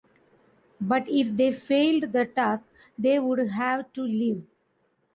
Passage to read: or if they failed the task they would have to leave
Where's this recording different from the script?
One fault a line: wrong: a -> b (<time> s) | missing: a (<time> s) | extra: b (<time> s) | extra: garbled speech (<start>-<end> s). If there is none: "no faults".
wrong: or -> but (0.8 s)